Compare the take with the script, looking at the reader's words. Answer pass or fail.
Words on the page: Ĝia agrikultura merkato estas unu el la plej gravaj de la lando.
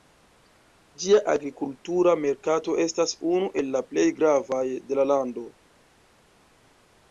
pass